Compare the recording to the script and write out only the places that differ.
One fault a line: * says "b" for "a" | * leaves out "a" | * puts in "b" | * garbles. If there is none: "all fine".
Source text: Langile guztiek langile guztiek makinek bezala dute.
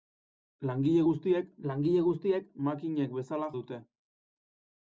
all fine